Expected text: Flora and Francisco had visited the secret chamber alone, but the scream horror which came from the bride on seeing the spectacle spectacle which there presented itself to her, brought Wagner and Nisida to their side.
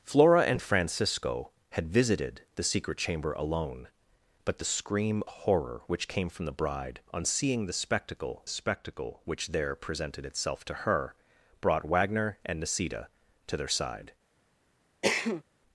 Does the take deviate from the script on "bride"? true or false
false